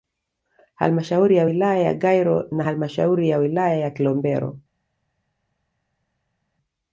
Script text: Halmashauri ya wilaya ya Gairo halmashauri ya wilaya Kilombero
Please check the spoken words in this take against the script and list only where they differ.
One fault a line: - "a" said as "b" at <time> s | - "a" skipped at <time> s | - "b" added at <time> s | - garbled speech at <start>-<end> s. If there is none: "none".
- "na" added at 2.5 s
- "ya" added at 3.7 s